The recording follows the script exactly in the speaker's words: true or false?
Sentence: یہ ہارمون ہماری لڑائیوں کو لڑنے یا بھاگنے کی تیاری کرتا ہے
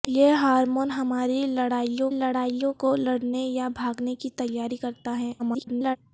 false